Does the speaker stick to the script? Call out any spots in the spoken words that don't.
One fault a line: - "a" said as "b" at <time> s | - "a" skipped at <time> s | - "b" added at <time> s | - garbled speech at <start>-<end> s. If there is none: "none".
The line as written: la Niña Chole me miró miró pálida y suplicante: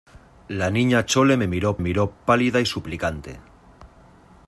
none